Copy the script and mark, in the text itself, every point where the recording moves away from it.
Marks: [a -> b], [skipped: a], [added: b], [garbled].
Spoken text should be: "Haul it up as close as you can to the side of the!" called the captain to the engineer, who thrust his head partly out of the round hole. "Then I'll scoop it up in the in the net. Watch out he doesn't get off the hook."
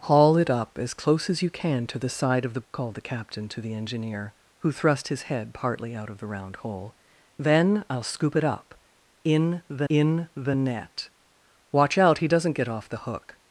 "Haul it up as close as you can to the side of the!" called the captain to the engineer, who thrust his head partly out of the round hole. "Then I'll scoop it up in the in the net. Watch out he doesn't get off the hook."